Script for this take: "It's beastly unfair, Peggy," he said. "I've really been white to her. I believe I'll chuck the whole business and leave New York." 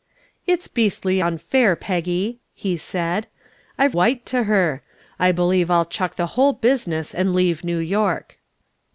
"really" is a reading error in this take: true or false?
true